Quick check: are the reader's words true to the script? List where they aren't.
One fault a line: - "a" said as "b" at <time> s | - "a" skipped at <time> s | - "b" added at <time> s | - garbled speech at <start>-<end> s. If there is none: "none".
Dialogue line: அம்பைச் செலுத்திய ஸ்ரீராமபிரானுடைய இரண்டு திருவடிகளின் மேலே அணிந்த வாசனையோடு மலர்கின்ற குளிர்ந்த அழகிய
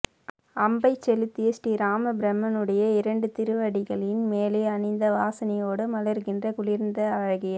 none